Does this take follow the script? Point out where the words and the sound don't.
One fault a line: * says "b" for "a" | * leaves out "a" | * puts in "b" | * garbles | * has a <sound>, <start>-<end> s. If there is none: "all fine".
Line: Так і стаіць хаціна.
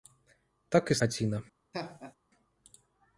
* leaves out "стаіць"
* has a laugh, 1.7-2.2 s